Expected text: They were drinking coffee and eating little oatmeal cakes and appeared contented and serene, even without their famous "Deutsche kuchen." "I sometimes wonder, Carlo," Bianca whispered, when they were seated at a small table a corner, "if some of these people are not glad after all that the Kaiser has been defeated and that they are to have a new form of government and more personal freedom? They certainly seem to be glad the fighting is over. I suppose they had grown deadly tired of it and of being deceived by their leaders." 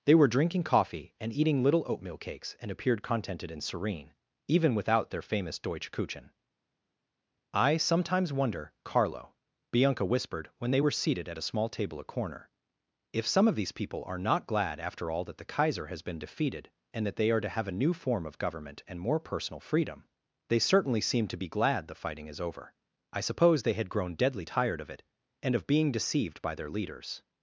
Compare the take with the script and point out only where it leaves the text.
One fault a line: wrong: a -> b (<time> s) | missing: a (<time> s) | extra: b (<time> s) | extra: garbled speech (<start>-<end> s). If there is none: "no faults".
no faults